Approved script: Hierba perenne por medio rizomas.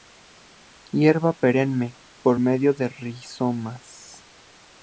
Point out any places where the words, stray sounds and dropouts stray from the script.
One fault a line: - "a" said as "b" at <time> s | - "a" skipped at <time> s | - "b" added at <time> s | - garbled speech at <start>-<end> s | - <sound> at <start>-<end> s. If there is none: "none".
- "de" added at 2.7 s